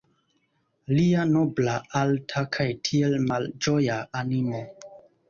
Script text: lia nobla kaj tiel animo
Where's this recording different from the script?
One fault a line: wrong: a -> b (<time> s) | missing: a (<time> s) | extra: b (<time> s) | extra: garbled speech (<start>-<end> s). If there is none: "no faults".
extra: alta (2.0 s)
extra: malĝoja (3.3 s)